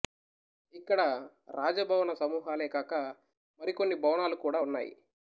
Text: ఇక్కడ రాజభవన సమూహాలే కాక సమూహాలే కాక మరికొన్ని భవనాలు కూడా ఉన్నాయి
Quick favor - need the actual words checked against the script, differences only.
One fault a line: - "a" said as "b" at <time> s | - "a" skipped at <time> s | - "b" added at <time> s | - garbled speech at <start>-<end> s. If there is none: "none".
- "సమూహాలే కాక" skipped at 2.9 s